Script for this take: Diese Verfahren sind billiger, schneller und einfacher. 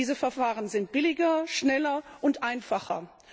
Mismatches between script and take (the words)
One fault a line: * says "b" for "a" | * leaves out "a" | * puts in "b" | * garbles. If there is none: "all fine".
all fine